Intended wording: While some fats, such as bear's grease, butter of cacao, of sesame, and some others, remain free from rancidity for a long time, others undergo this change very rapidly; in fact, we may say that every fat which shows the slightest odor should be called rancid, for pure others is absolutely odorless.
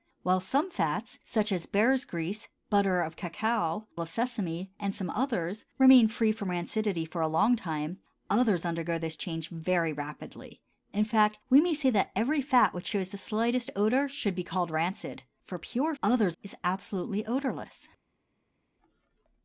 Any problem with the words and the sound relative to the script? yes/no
no